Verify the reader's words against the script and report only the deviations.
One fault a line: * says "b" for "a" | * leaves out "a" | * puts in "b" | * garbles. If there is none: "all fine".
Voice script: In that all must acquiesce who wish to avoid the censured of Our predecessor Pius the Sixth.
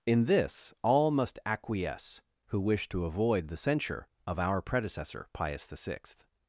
* says "this" for "that"
* says "censure" for "censured"